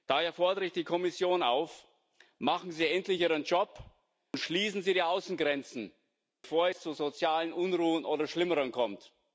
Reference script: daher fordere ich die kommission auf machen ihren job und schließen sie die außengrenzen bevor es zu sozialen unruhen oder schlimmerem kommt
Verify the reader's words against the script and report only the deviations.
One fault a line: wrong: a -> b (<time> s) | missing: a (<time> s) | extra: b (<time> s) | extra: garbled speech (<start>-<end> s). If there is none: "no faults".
extra: sie endlich (2.7 s)